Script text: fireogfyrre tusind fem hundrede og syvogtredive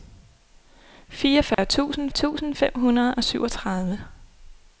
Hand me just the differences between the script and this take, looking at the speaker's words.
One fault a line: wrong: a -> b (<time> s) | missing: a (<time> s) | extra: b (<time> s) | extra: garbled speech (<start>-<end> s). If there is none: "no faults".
extra: tusind (2.1 s)